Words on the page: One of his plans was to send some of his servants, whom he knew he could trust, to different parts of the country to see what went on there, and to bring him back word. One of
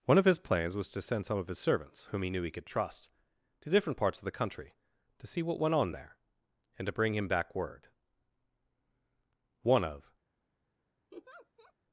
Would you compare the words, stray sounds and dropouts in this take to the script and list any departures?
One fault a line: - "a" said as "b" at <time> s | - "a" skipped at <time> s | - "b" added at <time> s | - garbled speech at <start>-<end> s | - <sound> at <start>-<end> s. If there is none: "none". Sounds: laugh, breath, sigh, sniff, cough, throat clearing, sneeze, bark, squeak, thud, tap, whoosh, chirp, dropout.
- laugh at 11.1-11.7 s